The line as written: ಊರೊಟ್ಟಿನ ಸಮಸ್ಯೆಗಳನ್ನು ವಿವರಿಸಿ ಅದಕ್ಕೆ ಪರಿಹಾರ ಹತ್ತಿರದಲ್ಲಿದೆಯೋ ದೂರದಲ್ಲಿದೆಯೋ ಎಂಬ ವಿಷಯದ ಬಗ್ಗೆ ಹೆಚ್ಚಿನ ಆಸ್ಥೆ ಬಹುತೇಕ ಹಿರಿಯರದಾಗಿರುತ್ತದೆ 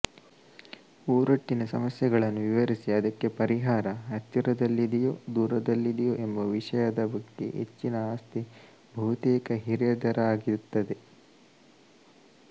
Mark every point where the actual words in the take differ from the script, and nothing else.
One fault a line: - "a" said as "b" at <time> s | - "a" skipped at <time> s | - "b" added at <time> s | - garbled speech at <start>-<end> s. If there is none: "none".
none